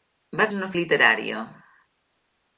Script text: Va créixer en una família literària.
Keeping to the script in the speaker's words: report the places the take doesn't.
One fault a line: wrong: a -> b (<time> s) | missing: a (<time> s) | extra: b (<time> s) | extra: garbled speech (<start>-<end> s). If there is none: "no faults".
missing: créixer (0.5 s)
missing: família (0.7 s)